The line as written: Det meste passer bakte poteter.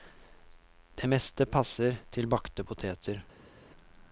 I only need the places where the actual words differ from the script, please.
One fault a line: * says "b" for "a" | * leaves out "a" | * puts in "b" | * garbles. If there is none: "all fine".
* puts in "til"